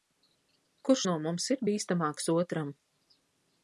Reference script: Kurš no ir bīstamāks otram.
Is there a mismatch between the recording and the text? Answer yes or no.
yes